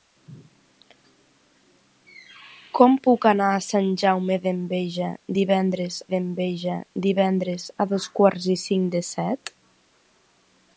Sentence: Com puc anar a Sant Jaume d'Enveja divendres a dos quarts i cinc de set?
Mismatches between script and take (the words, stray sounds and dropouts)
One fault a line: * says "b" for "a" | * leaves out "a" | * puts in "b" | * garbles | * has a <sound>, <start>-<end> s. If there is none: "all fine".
* puts in "d'Enveja divendres"